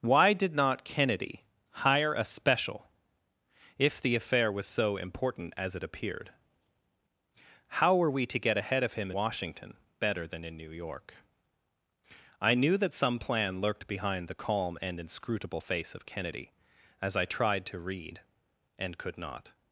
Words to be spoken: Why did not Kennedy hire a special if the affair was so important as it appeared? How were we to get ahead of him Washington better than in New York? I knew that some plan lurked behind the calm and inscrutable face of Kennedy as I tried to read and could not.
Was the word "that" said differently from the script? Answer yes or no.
no